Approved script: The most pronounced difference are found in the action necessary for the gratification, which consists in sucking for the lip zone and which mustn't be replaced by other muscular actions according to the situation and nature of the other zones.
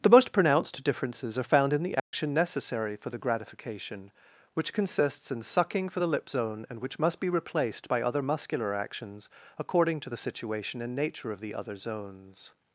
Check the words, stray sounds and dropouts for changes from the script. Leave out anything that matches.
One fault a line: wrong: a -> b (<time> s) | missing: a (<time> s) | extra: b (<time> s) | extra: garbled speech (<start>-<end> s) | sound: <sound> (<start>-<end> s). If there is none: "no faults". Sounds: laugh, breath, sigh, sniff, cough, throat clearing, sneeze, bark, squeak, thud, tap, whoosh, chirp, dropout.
wrong: difference -> differences (0.8 s)
sound: dropout (2.0-2.1 s)
wrong: mustn't -> must (7.0 s)